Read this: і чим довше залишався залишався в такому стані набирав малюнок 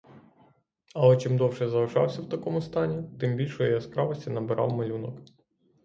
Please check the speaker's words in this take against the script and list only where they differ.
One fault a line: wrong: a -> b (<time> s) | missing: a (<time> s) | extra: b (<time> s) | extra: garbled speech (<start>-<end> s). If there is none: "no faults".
wrong: і -> але (0.9 s)
missing: залишався (2.2 s)
extra: тим більшої яскравості (3.2 s)